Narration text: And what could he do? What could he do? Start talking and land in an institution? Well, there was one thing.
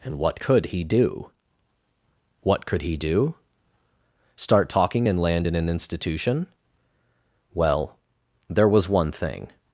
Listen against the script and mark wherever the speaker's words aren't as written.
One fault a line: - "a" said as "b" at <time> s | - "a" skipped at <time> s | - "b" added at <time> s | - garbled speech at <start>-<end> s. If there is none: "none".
none